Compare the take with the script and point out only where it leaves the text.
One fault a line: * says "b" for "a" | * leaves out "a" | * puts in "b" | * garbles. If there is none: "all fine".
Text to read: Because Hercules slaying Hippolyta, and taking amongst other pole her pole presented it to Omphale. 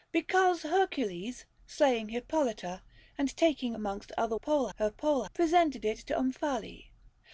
all fine